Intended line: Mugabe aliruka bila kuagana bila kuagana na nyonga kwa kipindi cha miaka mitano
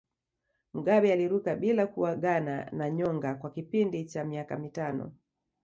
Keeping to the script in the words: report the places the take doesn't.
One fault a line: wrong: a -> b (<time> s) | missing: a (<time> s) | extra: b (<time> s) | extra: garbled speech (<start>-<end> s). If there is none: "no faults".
missing: bila kuagana (2.7 s)